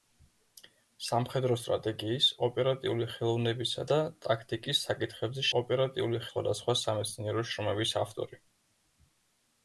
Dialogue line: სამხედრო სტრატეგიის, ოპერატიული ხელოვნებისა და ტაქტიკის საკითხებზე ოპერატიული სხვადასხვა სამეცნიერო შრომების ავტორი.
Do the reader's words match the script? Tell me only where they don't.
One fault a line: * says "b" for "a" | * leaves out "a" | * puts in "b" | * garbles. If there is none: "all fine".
all fine